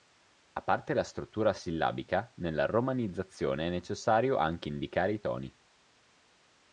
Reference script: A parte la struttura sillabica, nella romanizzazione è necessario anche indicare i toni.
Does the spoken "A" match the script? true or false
true